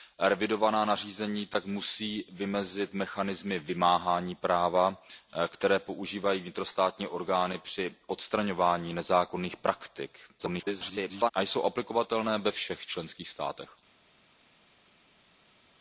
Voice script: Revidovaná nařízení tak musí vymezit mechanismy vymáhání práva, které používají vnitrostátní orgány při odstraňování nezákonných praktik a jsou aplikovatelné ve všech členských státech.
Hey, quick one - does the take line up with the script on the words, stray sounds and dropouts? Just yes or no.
no